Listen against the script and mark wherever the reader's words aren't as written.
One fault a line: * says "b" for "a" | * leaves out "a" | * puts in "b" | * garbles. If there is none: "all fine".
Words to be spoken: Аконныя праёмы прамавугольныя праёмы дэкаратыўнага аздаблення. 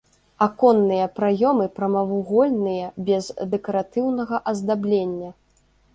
* says "без" for "праёмы"